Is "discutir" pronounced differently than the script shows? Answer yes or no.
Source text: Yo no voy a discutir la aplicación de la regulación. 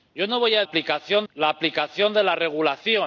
yes